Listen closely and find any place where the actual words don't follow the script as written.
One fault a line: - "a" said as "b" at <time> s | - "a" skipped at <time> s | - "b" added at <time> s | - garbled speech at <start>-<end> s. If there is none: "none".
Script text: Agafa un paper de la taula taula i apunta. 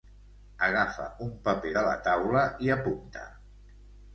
- "taula" skipped at 2.4 s